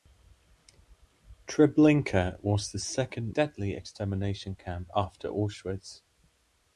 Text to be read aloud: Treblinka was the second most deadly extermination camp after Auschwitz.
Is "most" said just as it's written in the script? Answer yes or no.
no